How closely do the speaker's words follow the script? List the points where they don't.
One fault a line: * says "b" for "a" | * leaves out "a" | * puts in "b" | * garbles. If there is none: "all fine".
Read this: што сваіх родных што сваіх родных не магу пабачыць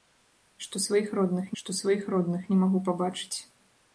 all fine